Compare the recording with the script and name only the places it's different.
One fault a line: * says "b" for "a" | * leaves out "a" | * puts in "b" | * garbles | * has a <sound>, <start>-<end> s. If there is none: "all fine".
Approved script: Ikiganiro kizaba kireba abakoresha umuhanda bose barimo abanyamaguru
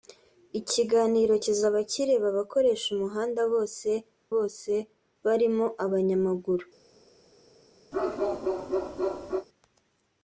* puts in "bose"
* has a bark, 7.9-9.5 s